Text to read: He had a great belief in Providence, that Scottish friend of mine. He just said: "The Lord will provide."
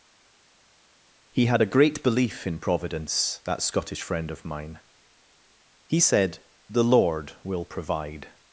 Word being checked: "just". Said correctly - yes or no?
no